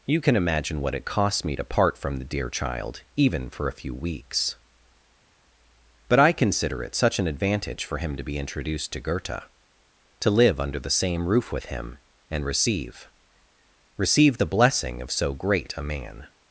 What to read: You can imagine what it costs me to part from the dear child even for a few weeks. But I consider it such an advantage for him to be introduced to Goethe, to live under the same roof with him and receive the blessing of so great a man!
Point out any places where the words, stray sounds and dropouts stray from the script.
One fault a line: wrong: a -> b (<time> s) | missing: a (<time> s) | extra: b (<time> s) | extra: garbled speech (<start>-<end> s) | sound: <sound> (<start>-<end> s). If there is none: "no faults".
extra: receive (14.0 s)